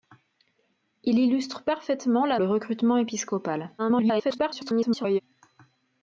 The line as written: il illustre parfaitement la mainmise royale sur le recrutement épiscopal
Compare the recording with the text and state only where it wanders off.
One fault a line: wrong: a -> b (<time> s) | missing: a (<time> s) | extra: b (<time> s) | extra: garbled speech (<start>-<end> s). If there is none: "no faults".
missing: mainmise royale sur (2.4 s)
extra: garbled speech (3.8-5.2 s)